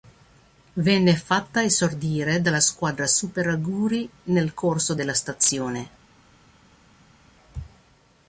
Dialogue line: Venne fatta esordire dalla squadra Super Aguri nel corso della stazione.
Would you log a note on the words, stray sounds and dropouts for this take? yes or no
no